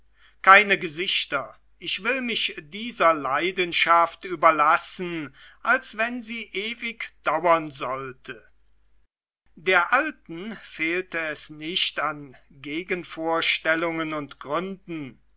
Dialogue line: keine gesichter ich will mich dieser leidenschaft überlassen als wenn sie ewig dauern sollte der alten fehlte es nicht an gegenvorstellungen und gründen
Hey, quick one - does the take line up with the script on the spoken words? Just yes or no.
yes